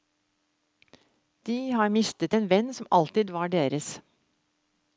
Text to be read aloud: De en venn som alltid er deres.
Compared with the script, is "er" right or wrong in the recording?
wrong